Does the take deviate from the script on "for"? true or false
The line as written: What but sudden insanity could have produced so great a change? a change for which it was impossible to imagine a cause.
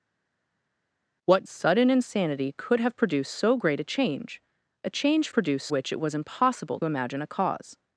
true